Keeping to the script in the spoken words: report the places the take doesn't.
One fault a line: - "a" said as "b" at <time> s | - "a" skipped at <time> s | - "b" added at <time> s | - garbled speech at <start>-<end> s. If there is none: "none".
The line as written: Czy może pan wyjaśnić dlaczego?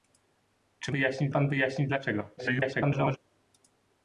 - "może" said as "wyjaśnić" at 0.9 s
- garbled speech at 2.4-3.2 s